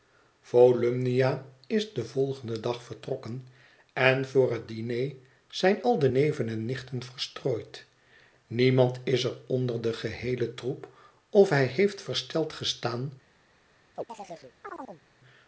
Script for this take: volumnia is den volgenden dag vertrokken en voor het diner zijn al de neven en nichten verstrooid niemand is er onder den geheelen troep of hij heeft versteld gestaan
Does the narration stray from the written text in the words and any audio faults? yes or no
yes